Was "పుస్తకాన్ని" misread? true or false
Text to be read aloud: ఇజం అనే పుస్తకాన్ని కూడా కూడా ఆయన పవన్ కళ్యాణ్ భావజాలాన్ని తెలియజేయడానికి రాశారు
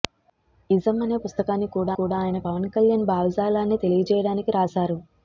false